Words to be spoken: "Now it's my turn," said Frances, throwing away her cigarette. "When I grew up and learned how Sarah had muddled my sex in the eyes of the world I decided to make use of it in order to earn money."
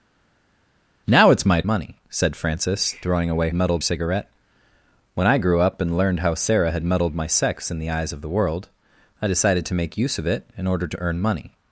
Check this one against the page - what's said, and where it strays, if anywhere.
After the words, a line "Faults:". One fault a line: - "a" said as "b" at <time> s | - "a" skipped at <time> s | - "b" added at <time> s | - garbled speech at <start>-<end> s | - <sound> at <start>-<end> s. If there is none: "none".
"Now it's my money," said Frances, throwing away muddled cigarette. "When I grew up and learned how Sarah had muddled my sex in the eyes of the world I decided to make use of it in order to earn money."
Faults:
- "turn" said as "money" at 1.6 s
- "her" said as "muddled" at 3.5 s